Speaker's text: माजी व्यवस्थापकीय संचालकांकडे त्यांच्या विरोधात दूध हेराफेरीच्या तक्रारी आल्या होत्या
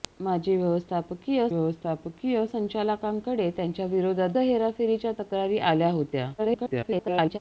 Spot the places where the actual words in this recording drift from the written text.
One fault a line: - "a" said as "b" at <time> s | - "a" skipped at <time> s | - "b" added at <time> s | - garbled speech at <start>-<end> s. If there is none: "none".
- "व्यवस्थापकीय" added at 1.5 s
- "दूध" skipped at 4.3 s
- garbled speech at 6.4-7.4 s